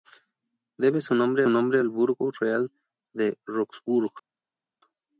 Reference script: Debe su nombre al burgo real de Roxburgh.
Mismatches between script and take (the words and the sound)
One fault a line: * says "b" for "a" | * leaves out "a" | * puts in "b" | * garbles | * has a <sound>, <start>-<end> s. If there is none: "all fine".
* puts in "nombre"